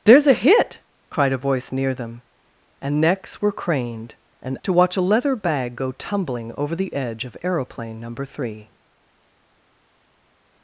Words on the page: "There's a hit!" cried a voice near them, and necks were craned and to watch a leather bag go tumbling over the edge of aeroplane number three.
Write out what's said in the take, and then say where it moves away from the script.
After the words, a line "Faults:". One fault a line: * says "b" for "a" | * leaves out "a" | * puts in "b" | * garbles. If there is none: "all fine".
"There's a hit!" cried a voice near them, and necks were craned and to watch a leather bag go tumbling over the edge of aeroplane number three.
Faults:
all fine